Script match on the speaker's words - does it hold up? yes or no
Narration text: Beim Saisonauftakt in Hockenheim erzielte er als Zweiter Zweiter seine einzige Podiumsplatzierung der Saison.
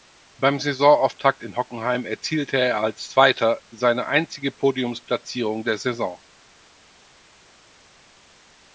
no